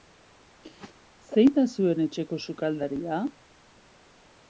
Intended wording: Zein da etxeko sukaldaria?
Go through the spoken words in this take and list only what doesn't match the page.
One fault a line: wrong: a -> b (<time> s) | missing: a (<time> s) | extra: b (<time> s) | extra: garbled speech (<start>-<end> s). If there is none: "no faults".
extra: zuen (1.8 s)